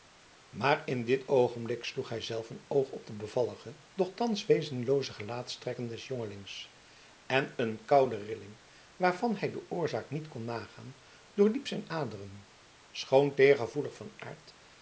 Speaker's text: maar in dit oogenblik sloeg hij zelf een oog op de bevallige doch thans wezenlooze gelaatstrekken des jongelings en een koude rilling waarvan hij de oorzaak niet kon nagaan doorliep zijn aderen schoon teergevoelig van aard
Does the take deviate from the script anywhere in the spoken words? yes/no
no